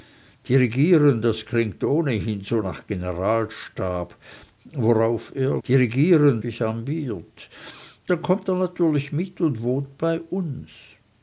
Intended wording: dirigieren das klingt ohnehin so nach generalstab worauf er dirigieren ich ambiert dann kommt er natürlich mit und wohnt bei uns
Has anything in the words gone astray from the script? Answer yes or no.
no